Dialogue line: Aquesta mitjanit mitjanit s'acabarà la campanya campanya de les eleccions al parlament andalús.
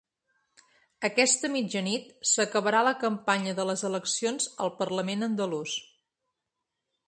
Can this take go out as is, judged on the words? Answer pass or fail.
fail